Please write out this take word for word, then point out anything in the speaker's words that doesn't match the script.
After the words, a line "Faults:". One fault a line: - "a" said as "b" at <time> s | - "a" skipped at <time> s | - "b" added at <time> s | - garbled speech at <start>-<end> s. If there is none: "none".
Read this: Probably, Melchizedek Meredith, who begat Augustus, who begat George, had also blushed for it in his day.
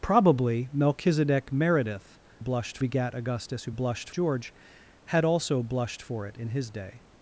Probably, Melchizedek Meredith, blushed begat Augustus, who blushed George, had also blushed for it in his day.
Faults:
- "who" said as "blushed" at 2.4 s
- "begat" said as "blushed" at 3.7 s